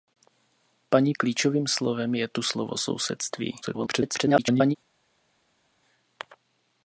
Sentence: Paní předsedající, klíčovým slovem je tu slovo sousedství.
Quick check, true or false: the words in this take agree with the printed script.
false